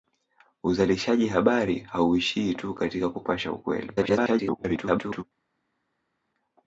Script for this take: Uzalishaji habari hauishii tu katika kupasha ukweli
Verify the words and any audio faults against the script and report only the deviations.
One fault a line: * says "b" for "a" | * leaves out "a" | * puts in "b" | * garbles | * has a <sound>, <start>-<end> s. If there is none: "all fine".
* garbles